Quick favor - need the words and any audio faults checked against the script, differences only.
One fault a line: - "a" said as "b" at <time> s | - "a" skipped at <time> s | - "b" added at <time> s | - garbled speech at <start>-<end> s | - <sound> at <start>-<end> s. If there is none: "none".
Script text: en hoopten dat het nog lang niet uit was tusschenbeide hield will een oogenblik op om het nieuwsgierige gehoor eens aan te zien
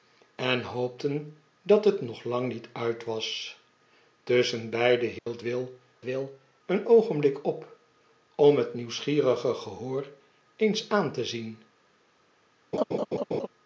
- dropout at 5.2-5.3 s
- "will" added at 6.0 s
- laugh at 12.7-13.5 s